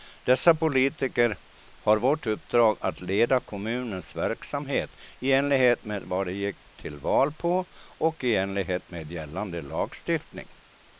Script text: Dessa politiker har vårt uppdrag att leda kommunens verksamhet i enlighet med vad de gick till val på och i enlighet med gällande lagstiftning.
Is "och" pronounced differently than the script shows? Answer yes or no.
no